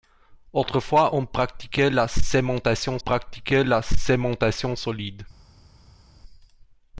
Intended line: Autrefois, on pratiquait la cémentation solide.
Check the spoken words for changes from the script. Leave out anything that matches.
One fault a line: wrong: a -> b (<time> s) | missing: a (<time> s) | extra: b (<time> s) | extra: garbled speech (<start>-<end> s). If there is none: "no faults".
extra: pratiquait la cémentation (3.0 s)